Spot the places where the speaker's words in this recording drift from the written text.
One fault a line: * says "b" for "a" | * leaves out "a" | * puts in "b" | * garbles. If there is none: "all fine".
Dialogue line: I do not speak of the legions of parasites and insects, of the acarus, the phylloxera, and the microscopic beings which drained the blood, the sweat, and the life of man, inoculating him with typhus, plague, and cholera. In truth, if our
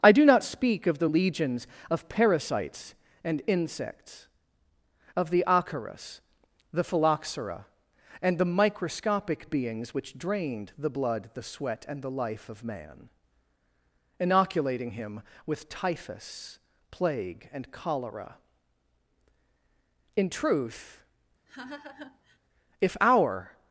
all fine